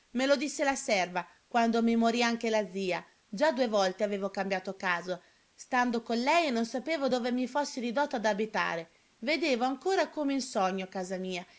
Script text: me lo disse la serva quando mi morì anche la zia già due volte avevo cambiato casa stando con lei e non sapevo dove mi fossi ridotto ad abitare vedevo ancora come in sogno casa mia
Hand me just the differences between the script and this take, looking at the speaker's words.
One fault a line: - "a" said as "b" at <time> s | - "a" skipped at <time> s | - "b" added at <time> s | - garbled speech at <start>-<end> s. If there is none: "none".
none